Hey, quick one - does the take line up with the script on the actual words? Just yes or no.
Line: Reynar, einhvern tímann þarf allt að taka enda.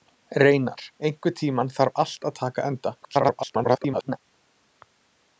no